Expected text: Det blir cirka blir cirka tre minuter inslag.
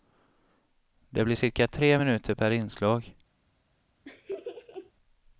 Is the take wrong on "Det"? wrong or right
right